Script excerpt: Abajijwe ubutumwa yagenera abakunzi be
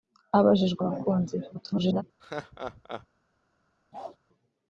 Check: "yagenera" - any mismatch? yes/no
yes